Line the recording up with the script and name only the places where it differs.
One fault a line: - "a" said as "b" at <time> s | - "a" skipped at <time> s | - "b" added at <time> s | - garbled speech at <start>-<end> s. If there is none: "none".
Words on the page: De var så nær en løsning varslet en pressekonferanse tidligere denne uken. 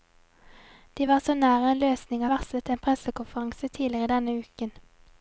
none